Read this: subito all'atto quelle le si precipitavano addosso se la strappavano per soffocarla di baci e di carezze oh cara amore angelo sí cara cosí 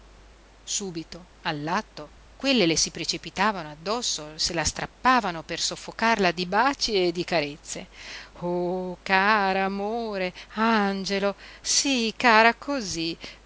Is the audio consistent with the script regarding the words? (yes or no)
yes